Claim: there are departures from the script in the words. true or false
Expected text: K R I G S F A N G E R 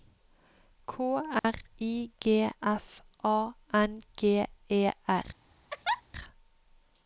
true